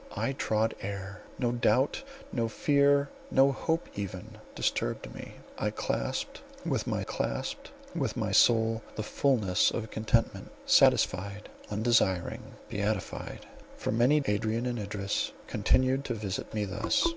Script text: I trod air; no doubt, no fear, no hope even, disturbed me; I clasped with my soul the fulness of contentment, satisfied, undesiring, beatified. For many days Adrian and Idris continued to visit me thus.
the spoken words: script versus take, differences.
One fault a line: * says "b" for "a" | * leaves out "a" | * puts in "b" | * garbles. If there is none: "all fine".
* puts in "clasped with my"
* leaves out "days"